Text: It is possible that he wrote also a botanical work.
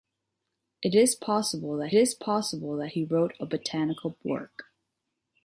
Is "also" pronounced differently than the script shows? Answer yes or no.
yes